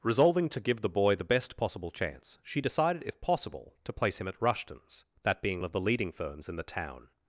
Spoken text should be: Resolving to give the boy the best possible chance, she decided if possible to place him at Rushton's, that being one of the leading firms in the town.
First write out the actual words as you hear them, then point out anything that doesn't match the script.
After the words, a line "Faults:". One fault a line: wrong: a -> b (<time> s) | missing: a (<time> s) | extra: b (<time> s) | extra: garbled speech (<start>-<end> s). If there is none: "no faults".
Resolving to give the boy the best possible chance, she decided if possible to place him at Rushton's, that being of the leading firms in the town.
Faults:
missing: one (5.6 s)